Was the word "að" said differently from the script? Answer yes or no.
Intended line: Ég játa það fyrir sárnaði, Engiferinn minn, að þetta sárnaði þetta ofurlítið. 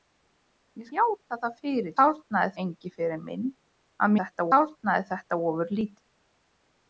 no